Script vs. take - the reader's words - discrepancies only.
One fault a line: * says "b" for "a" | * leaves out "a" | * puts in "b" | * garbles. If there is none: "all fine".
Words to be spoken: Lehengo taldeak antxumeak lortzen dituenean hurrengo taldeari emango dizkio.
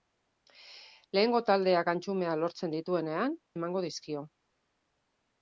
* leaves out "hurrengo taldeari"